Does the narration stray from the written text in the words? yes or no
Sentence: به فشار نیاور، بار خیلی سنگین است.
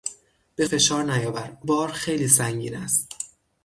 no